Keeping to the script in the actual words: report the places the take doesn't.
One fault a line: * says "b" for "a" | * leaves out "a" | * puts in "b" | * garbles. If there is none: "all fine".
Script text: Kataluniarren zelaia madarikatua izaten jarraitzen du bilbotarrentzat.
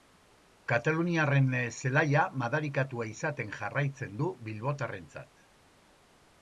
all fine